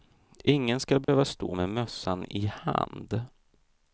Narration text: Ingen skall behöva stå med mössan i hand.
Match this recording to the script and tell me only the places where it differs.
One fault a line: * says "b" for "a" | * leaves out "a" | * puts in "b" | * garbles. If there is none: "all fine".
all fine